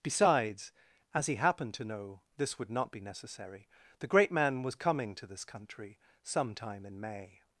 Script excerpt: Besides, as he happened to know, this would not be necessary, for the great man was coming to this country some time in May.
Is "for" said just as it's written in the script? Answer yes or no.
no